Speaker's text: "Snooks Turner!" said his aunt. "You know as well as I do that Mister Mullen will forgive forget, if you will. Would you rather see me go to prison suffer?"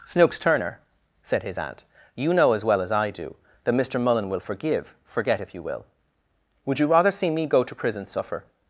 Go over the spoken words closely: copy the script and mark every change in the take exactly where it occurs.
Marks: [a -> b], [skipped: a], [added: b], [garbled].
"Snooks Turner!" said his aunt. "You know as well as I do that Mister Mullen will forgive forget, if you will. Would you rather see me go to prison suffer?"